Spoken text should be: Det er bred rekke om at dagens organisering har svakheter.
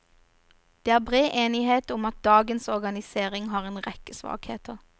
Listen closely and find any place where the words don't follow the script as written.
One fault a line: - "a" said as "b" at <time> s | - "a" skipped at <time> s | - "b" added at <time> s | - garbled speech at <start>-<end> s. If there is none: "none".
- "rekke" said as "enighet" at 1.3 s
- "en rekke" added at 3.7 s